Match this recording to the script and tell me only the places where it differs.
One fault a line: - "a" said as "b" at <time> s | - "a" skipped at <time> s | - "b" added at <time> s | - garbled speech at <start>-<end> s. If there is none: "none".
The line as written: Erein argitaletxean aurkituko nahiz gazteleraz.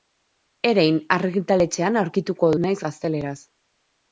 none